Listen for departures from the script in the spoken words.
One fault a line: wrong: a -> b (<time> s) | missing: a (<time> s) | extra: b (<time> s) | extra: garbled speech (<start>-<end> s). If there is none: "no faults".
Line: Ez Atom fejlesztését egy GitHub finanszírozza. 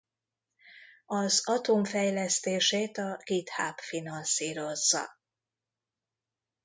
wrong: Ez -> Az (1.1 s)
wrong: egy -> a (3.0 s)